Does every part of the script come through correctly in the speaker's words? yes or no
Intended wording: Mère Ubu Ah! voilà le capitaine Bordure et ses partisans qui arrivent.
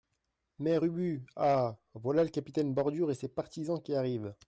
yes